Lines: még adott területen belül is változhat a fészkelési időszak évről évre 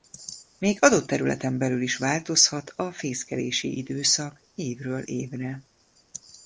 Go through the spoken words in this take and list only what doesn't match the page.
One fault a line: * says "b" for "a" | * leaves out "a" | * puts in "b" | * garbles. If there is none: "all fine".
all fine